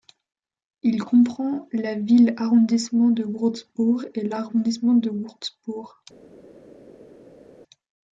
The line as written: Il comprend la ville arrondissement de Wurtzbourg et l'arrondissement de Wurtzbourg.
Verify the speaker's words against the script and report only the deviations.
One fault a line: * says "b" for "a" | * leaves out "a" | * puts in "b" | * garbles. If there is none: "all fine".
all fine